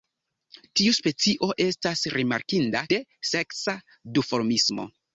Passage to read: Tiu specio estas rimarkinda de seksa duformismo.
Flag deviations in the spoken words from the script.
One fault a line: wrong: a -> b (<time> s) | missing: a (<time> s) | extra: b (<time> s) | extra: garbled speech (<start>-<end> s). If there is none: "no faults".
no faults